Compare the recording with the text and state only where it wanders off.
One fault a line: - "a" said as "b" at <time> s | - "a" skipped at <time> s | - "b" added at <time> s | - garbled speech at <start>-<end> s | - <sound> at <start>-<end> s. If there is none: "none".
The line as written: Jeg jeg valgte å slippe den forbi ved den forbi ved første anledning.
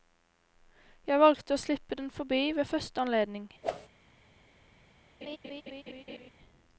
- "jeg" skipped at 1.2 s
- "den forbi ved" skipped at 2.7 s
- whoosh at 3.6-3.9 s
- laugh at 5.2-6.3 s